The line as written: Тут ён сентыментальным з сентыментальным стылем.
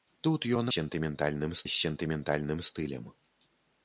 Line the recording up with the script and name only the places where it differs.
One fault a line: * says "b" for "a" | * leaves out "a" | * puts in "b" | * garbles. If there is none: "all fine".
all fine